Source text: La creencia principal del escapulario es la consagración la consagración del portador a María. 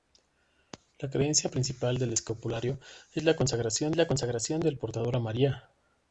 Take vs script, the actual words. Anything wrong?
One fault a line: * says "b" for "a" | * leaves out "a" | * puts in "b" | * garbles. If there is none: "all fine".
all fine